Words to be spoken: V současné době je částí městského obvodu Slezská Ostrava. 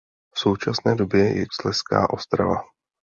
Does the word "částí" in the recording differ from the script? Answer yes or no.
yes